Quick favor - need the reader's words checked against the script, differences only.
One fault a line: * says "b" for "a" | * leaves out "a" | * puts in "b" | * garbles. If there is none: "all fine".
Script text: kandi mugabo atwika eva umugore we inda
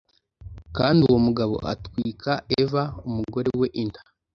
* puts in "uwo"